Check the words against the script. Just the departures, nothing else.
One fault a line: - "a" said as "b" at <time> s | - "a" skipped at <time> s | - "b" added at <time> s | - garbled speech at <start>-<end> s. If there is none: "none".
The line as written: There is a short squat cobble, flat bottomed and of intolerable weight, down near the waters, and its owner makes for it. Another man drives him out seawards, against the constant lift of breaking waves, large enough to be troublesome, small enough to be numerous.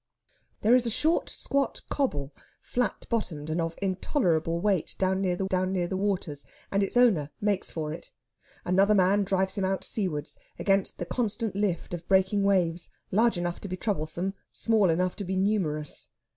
- "down near the" added at 5.5 s